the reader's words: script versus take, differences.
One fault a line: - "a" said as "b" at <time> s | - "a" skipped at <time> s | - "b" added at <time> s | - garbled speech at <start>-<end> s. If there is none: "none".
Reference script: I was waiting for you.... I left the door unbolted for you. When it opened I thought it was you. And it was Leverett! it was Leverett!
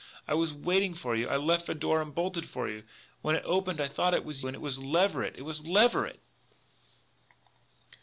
- "you" skipped at 4.4 s